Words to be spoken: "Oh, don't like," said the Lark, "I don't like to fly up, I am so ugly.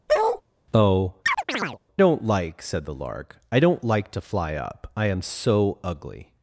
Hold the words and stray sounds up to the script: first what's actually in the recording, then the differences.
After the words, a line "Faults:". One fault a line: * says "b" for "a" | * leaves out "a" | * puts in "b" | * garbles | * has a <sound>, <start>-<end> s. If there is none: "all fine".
"Oh, don't like," said the Lark, "I don't like to fly up, I am so ugly.
Faults:
* has a bark, 0.1-0.4 s
* has a chirp, 1.2-1.8 s